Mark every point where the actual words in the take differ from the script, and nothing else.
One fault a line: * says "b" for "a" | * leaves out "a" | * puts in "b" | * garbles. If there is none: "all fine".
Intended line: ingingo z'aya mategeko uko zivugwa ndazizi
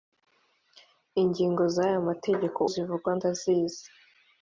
* leaves out "uko"